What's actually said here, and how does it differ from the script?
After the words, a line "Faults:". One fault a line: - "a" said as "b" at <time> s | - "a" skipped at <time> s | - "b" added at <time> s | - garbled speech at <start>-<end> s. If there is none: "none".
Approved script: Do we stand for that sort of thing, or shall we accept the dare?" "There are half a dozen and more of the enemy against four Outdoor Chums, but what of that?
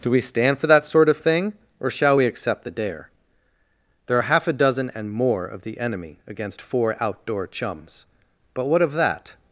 Do we stand for that sort of thing, or shall we accept the dare?" "There are half a dozen and more of the enemy against four Outdoor Chums, but what of that?
Faults:
none